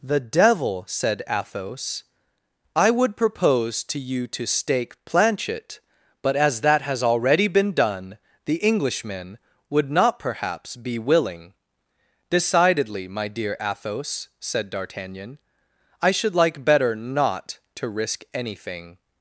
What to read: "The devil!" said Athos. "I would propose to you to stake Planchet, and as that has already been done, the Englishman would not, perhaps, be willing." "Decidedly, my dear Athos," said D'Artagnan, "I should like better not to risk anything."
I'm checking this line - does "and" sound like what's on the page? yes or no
no